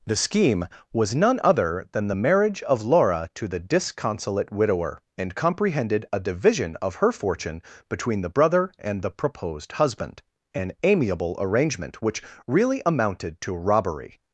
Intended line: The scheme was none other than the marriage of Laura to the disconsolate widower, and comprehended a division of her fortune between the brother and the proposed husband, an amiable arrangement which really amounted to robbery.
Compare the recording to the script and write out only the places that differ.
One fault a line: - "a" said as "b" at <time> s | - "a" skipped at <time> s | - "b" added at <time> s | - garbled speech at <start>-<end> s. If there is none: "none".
none